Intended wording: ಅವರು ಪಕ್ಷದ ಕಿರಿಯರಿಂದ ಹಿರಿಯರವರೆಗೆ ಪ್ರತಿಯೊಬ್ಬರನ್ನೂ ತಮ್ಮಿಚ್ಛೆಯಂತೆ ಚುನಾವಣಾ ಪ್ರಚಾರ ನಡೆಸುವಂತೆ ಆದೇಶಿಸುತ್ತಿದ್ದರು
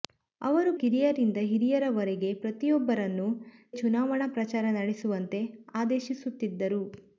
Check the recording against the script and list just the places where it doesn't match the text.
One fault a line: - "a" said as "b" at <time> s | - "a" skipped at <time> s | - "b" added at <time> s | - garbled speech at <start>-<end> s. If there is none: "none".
- "ಪಕ್ಷದ" skipped at 0.7 s
- "ತಮ್ಮಿಚ್ಛೆಯಂತೆ" skipped at 3.3 s